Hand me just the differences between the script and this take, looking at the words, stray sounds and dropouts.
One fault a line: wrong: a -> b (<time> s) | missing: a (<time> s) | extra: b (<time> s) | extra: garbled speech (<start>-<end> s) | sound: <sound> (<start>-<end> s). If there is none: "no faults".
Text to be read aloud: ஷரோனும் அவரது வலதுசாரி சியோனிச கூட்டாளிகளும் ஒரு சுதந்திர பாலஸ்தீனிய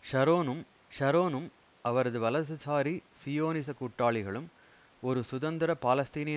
extra: ஷரோனும் (0.9 s)